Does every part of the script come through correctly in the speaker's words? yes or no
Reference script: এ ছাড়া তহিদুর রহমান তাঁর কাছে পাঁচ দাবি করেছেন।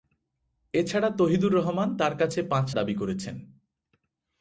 yes